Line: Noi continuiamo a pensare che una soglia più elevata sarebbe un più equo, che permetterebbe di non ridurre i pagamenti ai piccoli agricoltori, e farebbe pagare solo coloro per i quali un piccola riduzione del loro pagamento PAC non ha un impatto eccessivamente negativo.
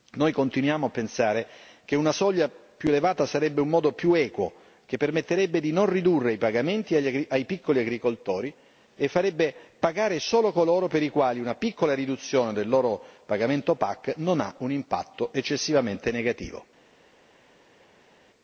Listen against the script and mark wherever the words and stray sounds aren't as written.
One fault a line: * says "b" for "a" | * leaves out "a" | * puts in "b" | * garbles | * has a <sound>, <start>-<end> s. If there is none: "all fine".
* puts in "modo"
* says "una" for "un"